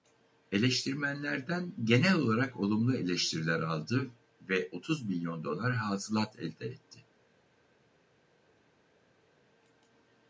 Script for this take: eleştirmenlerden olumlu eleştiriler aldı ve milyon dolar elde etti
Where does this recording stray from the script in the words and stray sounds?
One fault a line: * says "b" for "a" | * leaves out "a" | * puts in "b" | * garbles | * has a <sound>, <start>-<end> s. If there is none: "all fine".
* puts in "genel olarak"
* puts in "otuz"
* puts in "hasılat"